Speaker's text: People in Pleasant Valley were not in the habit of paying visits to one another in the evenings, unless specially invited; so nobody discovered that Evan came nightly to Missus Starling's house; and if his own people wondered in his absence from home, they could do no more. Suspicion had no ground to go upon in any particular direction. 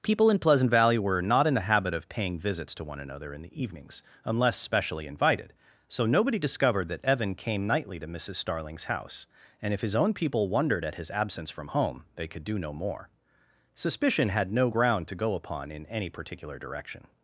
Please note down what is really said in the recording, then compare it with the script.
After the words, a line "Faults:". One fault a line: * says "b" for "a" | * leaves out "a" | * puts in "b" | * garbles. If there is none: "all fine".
People in Pleasant Valley were not in the habit of paying visits to one another in the evenings, unless specially invited; so nobody discovered that Evan came nightly to Missus Starling's house; and if his own people wondered at his absence from home, they could do no more. Suspicion had no ground to go upon in any particular direction.
Faults:
* says "at" for "in"